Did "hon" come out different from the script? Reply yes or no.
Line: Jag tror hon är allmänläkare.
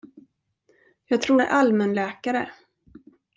yes